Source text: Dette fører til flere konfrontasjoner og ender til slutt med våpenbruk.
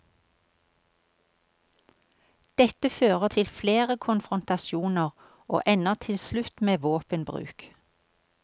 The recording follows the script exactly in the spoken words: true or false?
true